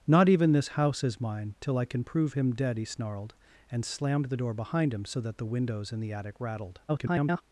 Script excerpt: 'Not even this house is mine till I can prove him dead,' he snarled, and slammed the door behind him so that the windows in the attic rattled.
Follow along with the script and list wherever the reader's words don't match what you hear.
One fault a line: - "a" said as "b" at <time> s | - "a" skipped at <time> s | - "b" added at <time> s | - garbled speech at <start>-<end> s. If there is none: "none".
- garbled speech at 6.9-7.4 s